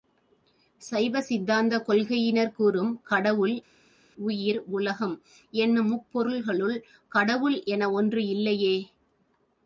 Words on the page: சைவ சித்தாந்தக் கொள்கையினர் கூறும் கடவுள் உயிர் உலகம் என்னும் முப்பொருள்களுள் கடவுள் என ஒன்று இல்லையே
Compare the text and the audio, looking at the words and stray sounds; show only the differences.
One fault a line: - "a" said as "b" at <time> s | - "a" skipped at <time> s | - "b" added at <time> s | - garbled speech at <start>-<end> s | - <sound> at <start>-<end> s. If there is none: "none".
none